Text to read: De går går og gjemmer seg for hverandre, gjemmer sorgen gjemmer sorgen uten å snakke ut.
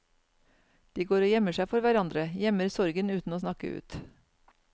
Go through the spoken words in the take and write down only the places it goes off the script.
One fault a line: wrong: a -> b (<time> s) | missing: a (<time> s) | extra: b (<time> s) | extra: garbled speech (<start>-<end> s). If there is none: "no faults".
missing: går (1.2 s)
missing: gjemmer sorgen (3.1 s)